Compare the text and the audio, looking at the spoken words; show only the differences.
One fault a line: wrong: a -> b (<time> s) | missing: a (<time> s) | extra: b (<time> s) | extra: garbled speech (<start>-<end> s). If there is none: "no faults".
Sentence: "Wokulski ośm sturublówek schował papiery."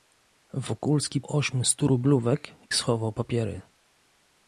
no faults